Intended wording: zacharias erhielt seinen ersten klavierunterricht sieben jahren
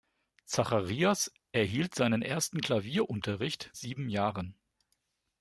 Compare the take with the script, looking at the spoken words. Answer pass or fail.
pass